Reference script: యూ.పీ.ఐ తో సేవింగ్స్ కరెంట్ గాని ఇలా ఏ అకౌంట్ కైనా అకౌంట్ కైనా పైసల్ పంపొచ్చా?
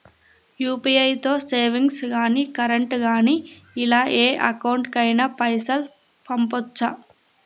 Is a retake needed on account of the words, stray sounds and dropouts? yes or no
yes